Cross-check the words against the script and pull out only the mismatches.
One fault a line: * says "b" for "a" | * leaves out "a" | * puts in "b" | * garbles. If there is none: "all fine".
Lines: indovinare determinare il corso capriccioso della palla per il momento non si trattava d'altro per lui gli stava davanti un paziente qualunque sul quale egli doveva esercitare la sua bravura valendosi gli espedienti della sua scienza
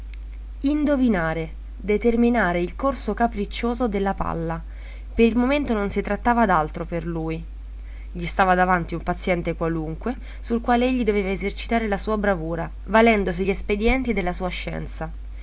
all fine